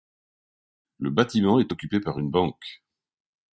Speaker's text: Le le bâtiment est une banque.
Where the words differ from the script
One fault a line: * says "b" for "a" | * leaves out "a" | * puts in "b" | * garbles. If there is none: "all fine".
* leaves out "le"
* puts in "occupé par"